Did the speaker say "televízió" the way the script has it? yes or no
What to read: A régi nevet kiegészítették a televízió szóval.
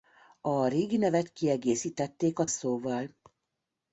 no